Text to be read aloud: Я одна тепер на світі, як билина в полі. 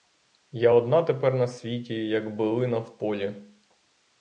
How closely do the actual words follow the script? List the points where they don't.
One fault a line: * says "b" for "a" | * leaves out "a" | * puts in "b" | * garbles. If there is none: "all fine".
all fine